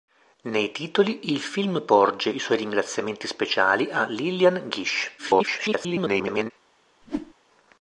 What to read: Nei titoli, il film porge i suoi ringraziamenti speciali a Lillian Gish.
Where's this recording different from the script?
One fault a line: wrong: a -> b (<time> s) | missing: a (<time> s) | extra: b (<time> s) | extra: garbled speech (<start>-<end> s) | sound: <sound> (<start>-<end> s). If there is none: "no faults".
extra: garbled speech (5.2-6.5 s)
sound: whoosh (7.0-7.3 s)